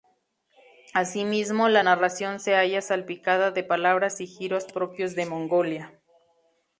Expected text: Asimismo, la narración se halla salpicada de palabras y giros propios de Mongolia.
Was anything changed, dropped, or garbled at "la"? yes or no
no